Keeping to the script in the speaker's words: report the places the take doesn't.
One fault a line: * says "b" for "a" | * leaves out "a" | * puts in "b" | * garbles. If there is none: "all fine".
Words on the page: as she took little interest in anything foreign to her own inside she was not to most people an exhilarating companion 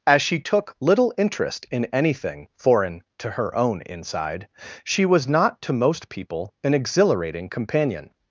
all fine